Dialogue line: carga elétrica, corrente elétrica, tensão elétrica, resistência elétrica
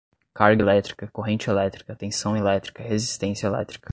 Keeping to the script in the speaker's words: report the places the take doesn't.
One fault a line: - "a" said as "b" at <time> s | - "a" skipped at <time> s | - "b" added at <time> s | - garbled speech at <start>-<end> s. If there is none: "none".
none